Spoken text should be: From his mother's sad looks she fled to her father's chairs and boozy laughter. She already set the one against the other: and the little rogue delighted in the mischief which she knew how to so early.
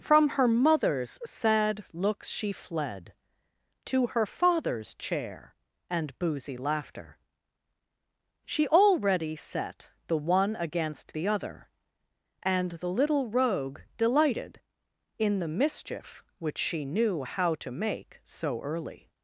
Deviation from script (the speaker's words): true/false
true